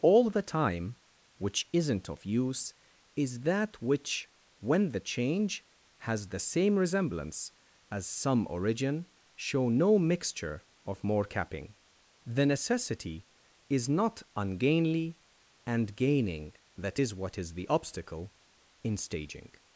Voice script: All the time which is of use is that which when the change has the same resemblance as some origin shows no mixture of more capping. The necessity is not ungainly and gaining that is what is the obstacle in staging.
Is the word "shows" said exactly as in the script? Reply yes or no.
no